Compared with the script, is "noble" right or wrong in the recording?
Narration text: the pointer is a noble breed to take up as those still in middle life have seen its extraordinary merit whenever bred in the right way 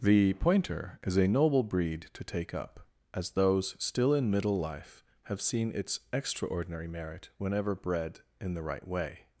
right